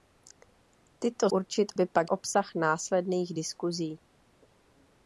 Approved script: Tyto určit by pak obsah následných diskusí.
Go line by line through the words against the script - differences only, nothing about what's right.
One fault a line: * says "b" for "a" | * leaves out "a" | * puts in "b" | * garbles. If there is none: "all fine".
all fine